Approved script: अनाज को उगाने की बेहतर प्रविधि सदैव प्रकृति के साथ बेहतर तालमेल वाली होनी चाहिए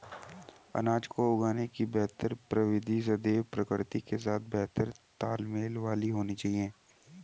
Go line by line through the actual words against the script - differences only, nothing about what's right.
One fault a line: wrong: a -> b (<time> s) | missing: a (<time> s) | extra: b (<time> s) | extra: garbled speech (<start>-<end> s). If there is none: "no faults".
no faults